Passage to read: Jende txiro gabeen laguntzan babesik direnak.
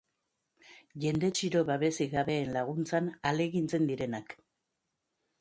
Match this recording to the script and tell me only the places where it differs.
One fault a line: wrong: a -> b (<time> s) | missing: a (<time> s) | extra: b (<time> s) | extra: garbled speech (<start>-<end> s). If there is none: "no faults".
extra: babesik (1.7 s)
wrong: babesik -> ahalegintzen (3.2 s)